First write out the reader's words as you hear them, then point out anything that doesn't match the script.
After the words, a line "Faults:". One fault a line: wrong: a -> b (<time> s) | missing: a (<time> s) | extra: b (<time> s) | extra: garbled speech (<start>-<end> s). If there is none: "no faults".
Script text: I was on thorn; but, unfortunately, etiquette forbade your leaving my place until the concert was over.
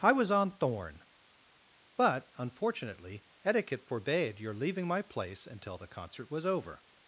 I was on thorn; but, unfortunately, etiquette forbade your leaving my place until the concert was over.
Faults:
no faults